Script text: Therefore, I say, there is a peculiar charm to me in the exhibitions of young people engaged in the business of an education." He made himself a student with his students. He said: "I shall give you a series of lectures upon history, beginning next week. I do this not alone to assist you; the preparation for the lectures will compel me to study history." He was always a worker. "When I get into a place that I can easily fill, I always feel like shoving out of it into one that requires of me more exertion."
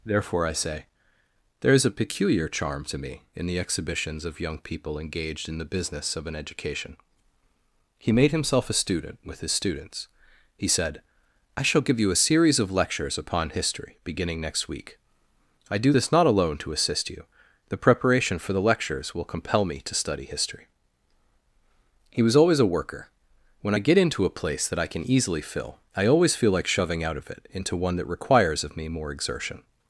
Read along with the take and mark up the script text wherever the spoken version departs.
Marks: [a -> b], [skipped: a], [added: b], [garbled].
Therefore, I say, there is a peculiar charm to me in the exhibitions of young people engaged in the business of an education." He made himself a student with his students. He said: "I shall give you a series of lectures upon history, beginning next week. I do this not alone to assist you; the preparation for the lectures will compel me to study history." He was always a worker. "When I get into a place that I can easily fill, I always feel like shoving out of it into one that requires of me more exertion."